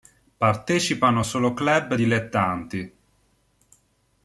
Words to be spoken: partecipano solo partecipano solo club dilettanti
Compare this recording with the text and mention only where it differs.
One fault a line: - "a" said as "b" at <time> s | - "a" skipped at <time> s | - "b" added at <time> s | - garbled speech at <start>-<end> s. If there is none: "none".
- "partecipano solo" skipped at 1.5 s